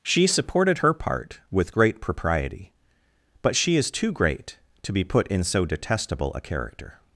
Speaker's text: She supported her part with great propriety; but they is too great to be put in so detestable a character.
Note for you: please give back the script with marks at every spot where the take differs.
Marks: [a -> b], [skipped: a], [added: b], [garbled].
She supported her part with great propriety; but [they -> she] is too great to be put in so detestable a character.